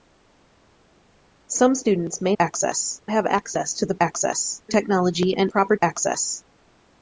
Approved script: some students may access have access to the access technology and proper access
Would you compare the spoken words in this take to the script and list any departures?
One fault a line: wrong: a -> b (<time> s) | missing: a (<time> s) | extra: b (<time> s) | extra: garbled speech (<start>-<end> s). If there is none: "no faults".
no faults